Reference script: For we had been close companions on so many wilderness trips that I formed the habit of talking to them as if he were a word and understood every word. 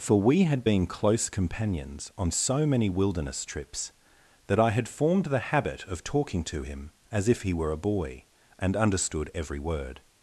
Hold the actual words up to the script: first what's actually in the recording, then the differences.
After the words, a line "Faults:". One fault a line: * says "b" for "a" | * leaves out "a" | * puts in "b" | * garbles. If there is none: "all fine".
For we had been close companions on so many wilderness trips that I had formed the habit of talking to him as if he were a boy and understood every word.
Faults:
* puts in "had"
* says "him" for "them"
* says "boy" for "word"